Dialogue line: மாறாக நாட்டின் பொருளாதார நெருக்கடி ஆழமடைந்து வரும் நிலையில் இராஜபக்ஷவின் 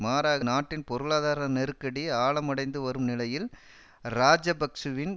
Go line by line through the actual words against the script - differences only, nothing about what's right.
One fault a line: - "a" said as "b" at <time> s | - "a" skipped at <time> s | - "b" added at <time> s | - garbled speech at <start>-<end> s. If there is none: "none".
none